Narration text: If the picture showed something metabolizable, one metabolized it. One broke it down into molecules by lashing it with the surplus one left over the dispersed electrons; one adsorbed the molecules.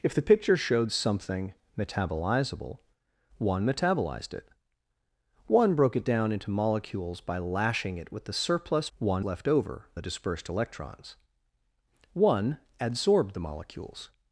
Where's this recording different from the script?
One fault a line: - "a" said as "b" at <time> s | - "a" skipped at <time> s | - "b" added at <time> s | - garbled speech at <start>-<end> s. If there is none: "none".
none